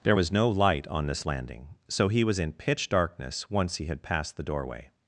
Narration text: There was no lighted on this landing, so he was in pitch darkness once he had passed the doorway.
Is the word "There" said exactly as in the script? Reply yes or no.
yes